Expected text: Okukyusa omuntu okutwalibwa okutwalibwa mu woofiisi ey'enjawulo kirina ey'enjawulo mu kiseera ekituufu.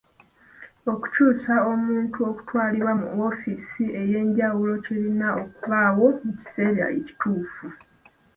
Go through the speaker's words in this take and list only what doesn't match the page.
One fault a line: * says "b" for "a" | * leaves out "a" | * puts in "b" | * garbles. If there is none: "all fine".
* leaves out "okutwalibwa"
* says "okubaawo" for "ey'enjawulo"